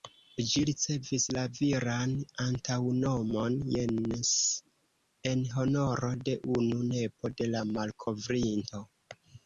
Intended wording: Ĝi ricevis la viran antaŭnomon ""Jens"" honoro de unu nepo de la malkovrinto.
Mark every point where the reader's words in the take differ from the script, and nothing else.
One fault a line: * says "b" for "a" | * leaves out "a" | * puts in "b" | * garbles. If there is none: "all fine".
* puts in "en"